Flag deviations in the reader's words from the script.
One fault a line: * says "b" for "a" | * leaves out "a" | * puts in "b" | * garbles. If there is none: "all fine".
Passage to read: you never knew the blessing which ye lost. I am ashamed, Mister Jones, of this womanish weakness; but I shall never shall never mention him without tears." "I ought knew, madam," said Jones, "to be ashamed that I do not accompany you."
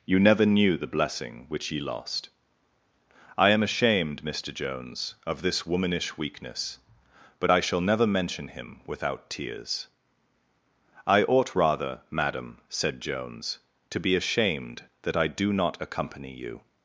* leaves out "shall never"
* says "rather" for "knew"